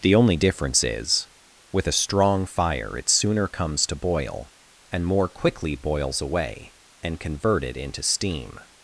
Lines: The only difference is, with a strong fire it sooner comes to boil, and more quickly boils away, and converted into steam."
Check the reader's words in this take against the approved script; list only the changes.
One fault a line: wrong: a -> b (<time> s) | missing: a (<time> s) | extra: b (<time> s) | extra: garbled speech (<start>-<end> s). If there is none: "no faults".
no faults